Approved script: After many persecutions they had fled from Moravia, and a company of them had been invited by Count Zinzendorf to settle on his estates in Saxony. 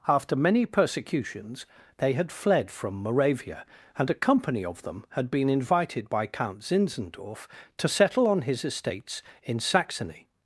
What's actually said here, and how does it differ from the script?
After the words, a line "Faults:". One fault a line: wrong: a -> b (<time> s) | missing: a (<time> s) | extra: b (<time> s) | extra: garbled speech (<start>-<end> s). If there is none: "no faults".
After many persecutions they had fled from Moravia, and a company of them had been invited by Count Zinzendorf to settle on his estates in Saxony.
Faults:
no faults